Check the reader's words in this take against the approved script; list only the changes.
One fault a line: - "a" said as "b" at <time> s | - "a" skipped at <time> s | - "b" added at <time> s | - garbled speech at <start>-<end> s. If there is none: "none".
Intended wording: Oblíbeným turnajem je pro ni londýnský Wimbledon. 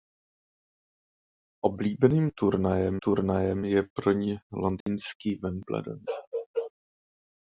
- "turnajem" added at 3.0 s